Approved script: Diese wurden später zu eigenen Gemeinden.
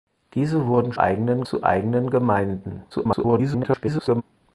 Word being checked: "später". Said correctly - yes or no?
no